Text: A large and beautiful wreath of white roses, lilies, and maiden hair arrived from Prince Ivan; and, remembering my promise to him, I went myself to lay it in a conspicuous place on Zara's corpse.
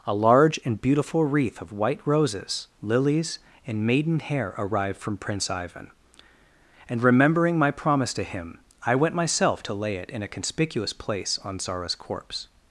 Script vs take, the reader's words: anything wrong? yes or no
no